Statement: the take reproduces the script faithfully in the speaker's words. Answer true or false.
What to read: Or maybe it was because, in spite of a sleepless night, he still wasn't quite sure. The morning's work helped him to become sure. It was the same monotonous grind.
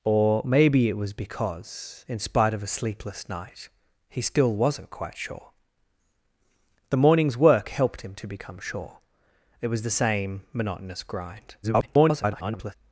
false